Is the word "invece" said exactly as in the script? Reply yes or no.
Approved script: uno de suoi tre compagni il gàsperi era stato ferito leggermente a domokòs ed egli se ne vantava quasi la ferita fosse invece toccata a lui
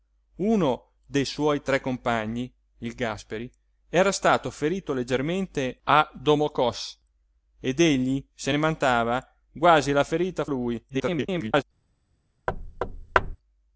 no